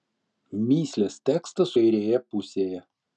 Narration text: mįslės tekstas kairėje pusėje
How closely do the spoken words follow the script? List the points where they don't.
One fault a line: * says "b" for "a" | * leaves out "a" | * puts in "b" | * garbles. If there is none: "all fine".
all fine